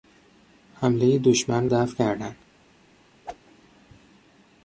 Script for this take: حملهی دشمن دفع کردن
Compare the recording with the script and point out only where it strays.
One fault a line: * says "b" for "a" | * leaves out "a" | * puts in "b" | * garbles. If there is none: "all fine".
all fine